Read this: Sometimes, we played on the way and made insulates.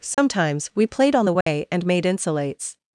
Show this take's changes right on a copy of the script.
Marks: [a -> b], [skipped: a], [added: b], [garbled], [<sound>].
Sometimes, [dropout] we played on the way [dropout] and made insulates.